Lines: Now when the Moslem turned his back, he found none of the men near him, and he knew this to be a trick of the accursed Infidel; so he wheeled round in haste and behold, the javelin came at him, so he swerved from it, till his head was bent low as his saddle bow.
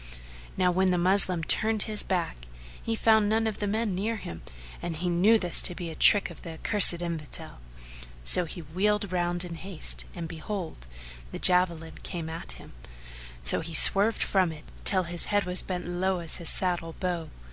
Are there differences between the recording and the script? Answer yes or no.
no